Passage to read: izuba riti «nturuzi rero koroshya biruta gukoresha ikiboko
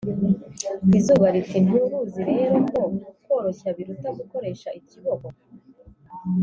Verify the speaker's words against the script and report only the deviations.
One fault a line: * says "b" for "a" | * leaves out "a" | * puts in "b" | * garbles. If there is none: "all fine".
* puts in "ko"